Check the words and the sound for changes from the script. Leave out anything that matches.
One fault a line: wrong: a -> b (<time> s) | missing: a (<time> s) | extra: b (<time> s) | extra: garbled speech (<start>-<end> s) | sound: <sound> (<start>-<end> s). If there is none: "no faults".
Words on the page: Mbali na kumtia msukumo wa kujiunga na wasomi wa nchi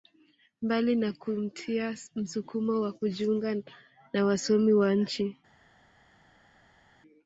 no faults